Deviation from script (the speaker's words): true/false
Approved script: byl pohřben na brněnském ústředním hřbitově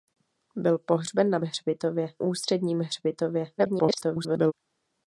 true